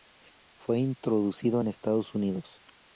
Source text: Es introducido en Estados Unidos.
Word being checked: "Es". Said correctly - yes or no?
no